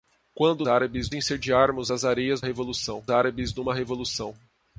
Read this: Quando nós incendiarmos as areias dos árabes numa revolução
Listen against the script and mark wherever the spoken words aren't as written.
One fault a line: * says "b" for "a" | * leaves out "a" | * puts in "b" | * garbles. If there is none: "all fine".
* says "árabes" for "nós"
* says "revolução" for "dos"